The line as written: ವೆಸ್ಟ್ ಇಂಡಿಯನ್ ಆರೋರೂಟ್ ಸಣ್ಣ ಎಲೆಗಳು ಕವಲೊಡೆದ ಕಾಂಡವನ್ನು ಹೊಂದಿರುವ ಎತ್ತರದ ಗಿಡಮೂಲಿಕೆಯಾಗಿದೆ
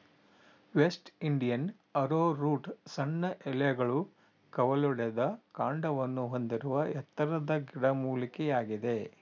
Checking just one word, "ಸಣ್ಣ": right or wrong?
right